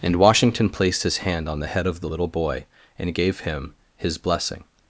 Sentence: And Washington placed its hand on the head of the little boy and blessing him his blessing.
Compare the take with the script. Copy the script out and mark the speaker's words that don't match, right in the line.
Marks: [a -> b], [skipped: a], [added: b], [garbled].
And Washington placed [its -> his] hand on the head of the little boy and [blessing -> gave] him his blessing.